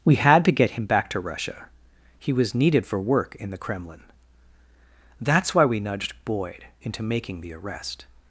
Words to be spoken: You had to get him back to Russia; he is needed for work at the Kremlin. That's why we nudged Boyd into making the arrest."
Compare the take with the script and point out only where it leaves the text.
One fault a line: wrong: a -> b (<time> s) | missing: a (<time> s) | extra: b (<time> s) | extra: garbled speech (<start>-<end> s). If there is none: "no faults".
wrong: You -> We (0.0 s)
wrong: is -> was (2.3 s)
wrong: at -> in (3.4 s)